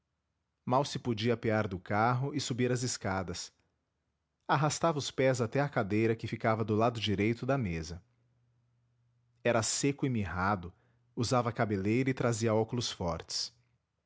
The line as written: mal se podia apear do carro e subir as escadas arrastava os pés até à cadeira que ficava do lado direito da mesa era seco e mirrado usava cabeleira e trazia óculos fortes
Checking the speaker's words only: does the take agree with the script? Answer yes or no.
yes